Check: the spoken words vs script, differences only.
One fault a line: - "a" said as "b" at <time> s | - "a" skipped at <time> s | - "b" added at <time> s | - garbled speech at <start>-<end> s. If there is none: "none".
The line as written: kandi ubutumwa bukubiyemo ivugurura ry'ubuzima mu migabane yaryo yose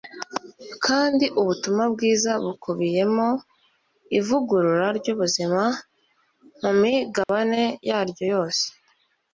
- "bwiza" added at 1.9 s